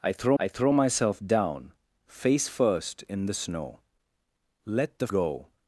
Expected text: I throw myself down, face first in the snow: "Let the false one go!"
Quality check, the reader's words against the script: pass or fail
fail